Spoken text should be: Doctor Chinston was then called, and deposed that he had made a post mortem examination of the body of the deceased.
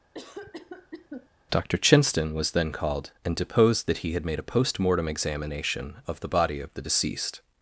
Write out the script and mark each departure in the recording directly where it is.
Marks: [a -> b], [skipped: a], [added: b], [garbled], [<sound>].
[cough] Doctor Chinston was then called, and deposed that he had made a post mortem examination of the body of the deceased.